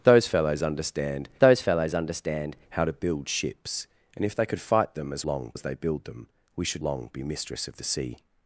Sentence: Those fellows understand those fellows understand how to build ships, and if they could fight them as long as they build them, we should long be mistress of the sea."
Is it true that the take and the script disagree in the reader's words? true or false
false